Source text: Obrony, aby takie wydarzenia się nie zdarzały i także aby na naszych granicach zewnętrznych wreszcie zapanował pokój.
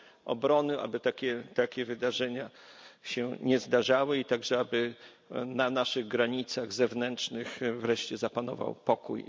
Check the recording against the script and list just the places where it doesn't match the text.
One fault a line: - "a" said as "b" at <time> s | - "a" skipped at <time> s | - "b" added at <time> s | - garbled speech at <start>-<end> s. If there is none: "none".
none